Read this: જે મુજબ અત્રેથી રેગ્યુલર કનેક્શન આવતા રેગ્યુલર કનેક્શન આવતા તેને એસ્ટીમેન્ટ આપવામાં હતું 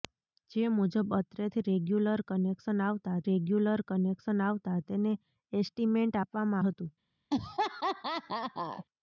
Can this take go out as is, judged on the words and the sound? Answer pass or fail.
fail